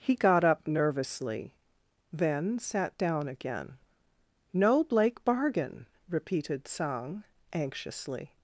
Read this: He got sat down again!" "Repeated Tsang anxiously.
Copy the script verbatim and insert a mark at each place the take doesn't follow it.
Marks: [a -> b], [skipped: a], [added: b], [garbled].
He got [added: up nervously then] sat down again!" [added: No blake bargain] "Repeated Tsang anxiously.